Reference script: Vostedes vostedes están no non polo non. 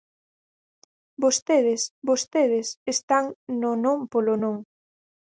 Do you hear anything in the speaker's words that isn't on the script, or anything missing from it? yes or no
no